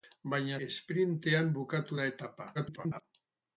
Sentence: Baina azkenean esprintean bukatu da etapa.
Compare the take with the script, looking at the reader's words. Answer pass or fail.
fail